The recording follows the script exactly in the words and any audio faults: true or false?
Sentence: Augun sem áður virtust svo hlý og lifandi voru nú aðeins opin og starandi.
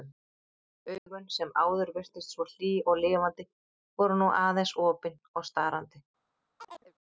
false